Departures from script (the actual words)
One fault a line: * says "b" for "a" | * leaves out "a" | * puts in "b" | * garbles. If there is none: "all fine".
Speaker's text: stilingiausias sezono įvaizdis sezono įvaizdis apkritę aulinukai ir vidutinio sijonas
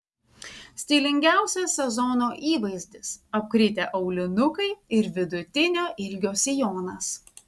* leaves out "sezono įvaizdis"
* puts in "ilgio"